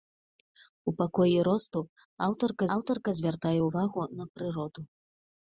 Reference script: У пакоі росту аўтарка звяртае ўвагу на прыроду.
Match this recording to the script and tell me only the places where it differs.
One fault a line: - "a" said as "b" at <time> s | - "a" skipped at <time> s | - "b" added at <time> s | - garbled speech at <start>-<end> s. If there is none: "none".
- "аўтарка" added at 2.8 s